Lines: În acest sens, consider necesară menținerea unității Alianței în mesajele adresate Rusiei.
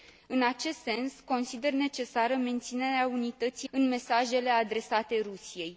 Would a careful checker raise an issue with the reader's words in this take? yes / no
yes